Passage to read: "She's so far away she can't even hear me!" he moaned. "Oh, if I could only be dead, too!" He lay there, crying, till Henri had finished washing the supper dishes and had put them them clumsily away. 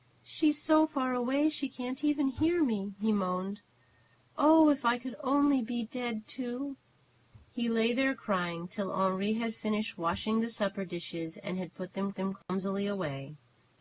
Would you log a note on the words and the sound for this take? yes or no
yes